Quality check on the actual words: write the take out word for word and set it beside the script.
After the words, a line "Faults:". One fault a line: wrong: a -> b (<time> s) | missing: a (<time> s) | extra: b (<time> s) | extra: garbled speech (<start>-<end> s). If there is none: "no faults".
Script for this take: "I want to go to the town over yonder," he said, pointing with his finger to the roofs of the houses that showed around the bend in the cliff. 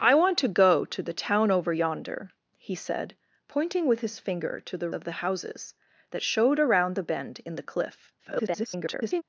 "I want to go to the town over yonder," he said, pointing with his finger to the of the houses that showed around the bend in the cliff. [garbled]
Faults:
missing: roofs (4.9 s)
extra: garbled speech (8.2-9.2 s)